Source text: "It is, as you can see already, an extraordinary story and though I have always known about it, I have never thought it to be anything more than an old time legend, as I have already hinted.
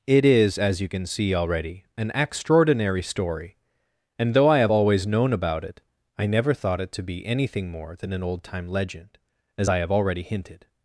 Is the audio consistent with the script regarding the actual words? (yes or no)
no